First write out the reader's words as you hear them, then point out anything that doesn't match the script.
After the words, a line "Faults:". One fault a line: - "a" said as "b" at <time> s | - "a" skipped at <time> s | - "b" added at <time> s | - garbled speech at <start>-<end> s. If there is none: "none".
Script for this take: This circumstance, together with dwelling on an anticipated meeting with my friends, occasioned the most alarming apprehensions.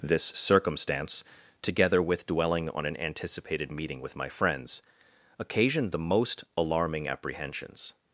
This circumstance, together with dwelling on an anticipated meeting with my friends, occasioned the most alarming apprehensions.
Faults:
none